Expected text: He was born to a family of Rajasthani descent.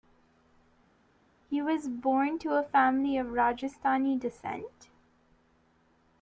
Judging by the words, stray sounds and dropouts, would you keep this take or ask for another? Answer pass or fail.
pass